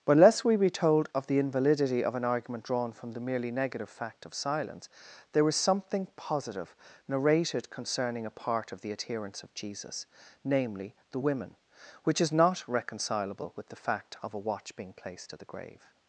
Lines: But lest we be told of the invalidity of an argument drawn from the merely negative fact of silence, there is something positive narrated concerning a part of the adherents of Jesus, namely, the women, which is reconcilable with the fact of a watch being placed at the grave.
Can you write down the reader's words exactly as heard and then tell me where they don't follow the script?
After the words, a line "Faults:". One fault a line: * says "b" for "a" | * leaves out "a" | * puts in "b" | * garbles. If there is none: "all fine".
But lest we be told of the invalidity of an argument drawn from the merely negative fact of silence, there is something positive narrated concerning a part of the adherents of Jesus, namely, the women, which is not reconcilable with the fact of a watch being placed at the grave.
Faults:
* puts in "not"